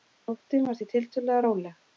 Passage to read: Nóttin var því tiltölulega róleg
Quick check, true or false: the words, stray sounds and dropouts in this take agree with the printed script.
true